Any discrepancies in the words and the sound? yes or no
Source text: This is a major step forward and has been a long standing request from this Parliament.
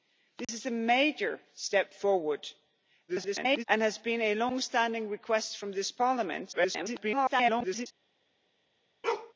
yes